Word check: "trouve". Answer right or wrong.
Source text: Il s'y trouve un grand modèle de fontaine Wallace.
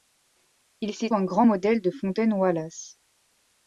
wrong